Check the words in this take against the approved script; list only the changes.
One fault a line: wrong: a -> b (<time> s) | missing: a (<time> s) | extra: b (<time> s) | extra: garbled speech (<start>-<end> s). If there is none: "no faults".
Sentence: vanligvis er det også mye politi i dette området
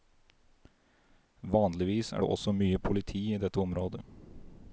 no faults